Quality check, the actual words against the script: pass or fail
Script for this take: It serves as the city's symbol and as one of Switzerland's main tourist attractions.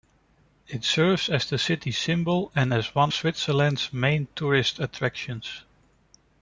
fail